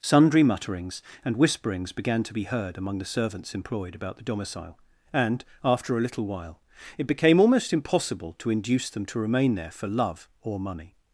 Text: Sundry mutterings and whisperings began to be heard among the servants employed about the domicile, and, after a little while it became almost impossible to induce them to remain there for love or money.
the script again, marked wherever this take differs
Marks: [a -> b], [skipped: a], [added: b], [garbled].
Sundry mutterings and whisperings began to be heard among the servants employed about the domicile, and, after a little while it became almost impossible to induce them to remain there for love or money.